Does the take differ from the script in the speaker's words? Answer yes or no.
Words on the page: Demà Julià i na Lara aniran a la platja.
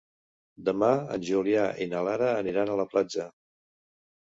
yes